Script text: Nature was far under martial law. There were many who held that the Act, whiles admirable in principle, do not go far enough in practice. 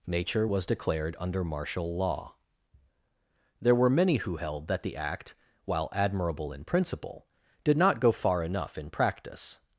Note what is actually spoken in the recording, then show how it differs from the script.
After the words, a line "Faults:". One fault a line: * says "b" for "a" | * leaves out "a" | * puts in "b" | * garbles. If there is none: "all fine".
Nature was declared under martial law. There were many who held that the Act, while admirable in principle, did not go far enough in practice.
Faults:
* says "declared" for "far"
* says "while" for "whiles"
* says "did" for "do"